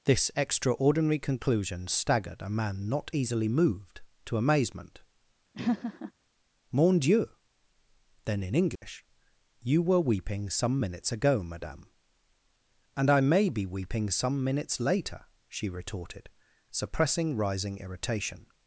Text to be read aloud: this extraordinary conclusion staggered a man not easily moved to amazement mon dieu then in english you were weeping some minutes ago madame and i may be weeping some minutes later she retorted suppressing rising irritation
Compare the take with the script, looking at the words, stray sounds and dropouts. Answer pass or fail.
fail